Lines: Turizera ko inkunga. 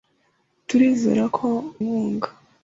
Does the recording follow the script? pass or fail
pass